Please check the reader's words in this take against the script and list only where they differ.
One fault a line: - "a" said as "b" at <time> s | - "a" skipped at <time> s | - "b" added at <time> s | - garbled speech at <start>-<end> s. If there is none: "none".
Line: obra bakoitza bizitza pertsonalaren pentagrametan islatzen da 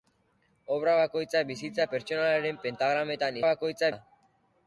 - "islatzen" said as "bakoitza" at 3.5 s